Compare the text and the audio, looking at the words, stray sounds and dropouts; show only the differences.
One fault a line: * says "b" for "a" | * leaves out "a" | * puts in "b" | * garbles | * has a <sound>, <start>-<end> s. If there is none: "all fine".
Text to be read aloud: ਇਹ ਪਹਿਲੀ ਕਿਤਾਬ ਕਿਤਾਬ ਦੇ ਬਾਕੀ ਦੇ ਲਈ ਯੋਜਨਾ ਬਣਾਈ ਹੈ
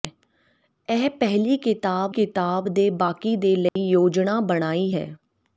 * has a dropout, 3.7-3.8 s